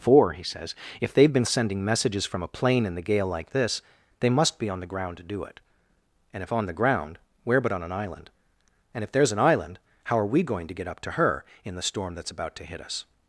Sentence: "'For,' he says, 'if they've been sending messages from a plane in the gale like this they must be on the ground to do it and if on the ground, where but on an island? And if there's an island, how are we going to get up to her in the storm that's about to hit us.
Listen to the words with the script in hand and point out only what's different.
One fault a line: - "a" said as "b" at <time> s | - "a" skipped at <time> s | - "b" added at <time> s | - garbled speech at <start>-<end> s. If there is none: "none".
none